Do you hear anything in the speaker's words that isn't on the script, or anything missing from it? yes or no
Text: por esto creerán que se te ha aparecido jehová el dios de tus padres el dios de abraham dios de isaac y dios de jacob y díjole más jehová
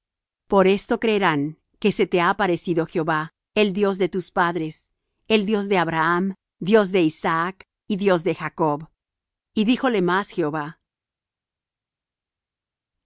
no